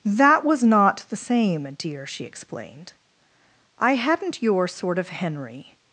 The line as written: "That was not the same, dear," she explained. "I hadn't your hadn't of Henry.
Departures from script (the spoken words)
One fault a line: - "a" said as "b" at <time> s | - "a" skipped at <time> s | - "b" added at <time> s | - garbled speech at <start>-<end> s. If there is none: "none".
- "hadn't" said as "sort" at 4.7 s